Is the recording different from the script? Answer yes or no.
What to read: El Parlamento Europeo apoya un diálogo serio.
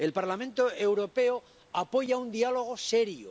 no